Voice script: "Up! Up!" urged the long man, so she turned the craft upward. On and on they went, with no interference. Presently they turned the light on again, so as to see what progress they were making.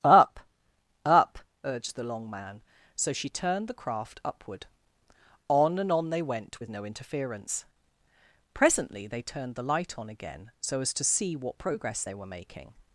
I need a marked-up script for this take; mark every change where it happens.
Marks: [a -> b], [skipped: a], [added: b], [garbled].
"Up! Up!" urged the long man, so she turned the craft upward. On and on they went, with no interference. Presently they turned the light on again, so as to see what progress they were making.